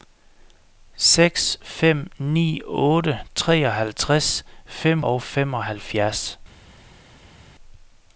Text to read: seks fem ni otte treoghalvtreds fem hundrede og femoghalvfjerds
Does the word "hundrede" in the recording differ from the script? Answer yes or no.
yes